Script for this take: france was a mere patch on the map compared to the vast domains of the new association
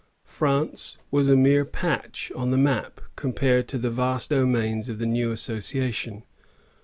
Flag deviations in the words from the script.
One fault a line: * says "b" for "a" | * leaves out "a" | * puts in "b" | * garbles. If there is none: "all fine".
all fine